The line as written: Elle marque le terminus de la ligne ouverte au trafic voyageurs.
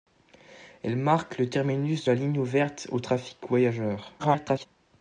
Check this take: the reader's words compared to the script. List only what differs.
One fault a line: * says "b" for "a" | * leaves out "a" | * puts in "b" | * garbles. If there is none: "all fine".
* leaves out "de"
* garbles